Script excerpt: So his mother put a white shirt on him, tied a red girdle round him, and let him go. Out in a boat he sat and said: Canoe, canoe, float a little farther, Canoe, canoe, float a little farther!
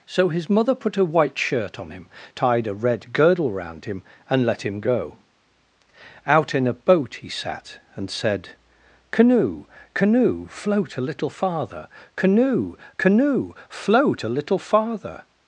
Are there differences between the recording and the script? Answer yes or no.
no